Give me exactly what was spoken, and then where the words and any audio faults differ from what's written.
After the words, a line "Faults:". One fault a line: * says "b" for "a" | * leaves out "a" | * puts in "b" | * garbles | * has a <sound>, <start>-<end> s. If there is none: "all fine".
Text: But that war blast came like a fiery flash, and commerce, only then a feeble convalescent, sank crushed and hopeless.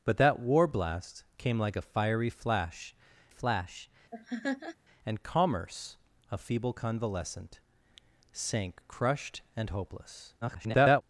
But that war blast came like a fiery flash flash, and commerce, a feeble convalescent, sank crushed and hopeless. [garbled]
Faults:
* puts in "flash"
* has a laugh, 4.1-4.8 s
* leaves out "only then"
* garbles